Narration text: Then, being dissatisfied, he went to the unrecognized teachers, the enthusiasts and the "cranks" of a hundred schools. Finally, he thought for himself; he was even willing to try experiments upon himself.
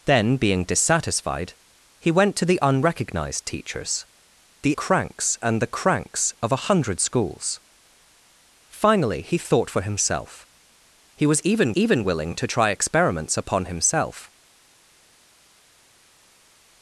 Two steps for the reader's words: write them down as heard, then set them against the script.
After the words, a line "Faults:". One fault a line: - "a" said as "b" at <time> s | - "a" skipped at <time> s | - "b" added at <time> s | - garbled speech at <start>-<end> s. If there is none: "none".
Then, being dissatisfied, he went to the unrecognized teachers, the cranks and the "cranks" of a hundred schools. Finally, he thought for himself; he was even even willing to try experiments upon himself.
Faults:
- "enthusiasts" said as "cranks" at 4.7 s
- "even" added at 11.7 s